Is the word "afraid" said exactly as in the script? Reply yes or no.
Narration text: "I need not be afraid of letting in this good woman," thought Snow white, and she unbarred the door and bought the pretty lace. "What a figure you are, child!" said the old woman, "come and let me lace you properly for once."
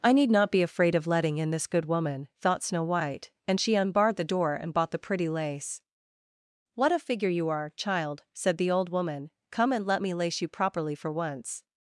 yes